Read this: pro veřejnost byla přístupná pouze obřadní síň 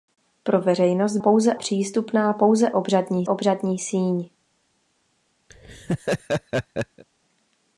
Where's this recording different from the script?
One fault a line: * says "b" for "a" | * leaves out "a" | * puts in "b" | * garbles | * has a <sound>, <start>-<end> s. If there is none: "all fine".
* says "pouze" for "byla"
* puts in "obřadní"
* has a laugh, 5.5-7.0 s